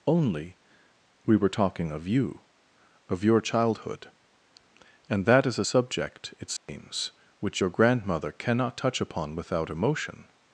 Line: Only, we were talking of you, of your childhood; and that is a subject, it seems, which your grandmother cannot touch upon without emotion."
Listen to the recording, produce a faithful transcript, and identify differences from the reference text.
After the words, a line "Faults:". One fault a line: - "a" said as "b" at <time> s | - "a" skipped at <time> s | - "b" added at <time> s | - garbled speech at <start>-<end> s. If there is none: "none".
Only, we were talking of you, of your childhood; and that is a subject, it seems, which your grandmother cannot touch upon without emotion."
Faults:
none